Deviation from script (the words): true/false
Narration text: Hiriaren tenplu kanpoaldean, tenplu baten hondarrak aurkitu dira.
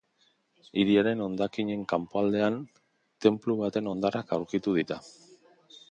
true